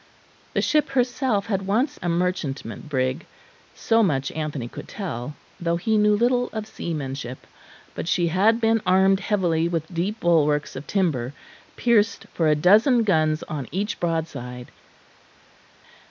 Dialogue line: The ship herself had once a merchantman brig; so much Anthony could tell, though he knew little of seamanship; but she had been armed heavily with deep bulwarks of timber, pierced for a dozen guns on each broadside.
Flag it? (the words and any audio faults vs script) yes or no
no